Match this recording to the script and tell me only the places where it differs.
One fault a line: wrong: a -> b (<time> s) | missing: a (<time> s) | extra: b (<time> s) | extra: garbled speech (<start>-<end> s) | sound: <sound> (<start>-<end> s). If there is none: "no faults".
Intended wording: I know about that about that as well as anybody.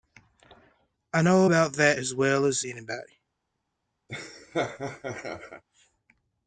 missing: about that (2.0 s)
sound: laugh (4.1-5.6 s)